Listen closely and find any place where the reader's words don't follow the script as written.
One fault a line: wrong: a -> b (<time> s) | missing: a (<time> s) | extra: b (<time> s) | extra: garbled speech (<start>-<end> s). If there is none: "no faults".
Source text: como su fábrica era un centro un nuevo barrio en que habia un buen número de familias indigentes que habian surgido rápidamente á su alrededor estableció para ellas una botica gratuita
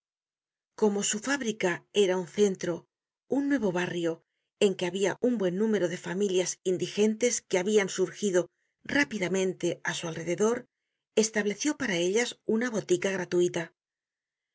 no faults